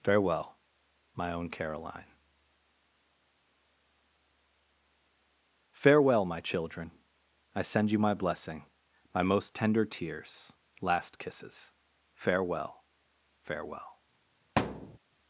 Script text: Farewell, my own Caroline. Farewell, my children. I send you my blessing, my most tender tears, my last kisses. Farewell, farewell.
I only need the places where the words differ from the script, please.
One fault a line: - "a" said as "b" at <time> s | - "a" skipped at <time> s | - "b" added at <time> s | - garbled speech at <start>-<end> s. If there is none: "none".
- "my" skipped at 10.5 s